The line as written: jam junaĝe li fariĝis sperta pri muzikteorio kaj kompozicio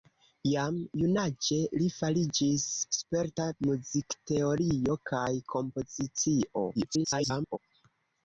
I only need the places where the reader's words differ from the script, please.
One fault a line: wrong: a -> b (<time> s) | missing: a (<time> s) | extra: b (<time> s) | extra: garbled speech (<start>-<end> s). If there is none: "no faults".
missing: pri (3.5 s)
extra: garbled speech (6.7-7.6 s)